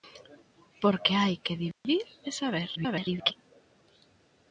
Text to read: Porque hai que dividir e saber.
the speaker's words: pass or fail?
fail